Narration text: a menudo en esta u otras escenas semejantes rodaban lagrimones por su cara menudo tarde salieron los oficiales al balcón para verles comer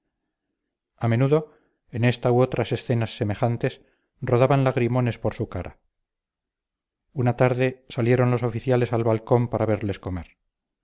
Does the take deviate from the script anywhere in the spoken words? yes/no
yes